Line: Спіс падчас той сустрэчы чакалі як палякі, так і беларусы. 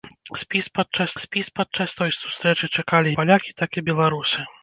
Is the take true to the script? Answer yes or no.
no